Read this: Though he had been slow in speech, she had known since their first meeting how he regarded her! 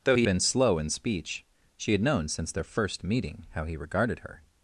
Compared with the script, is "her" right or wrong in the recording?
right